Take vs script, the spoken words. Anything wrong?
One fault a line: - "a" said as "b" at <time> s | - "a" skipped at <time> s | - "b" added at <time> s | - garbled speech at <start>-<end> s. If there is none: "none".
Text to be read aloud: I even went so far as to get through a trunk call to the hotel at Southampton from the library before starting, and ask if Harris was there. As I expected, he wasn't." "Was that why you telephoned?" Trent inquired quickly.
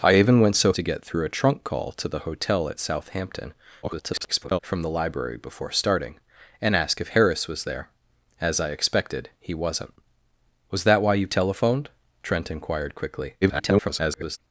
- "far as" skipped at 0.7 s
- garbled speech at 3.8-4.6 s
- garbled speech at 13.4-14.4 s